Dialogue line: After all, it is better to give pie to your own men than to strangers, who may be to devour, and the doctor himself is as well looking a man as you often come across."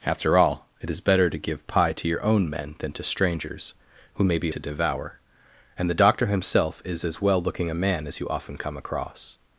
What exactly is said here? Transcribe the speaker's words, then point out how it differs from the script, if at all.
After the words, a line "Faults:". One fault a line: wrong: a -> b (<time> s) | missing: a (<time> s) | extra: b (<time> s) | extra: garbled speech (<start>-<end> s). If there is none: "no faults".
After all, it is better to give pie to your own men than to strangers, who may be to devour, and the doctor himself is as well looking a man as you often come across."
Faults:
no faults